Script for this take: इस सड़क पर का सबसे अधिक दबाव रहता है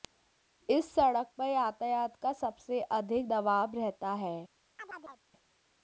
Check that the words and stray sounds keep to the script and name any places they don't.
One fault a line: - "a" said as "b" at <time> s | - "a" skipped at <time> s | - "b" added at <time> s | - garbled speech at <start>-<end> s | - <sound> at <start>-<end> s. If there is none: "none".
- "यातायात" added at 1.4 s
- chirp at 4.8-5.2 s